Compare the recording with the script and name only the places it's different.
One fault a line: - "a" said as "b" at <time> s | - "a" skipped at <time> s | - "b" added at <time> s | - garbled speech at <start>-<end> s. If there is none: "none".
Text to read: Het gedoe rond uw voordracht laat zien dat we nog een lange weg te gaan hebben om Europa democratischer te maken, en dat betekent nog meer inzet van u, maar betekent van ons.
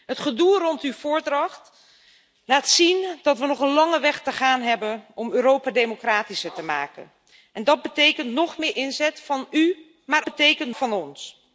none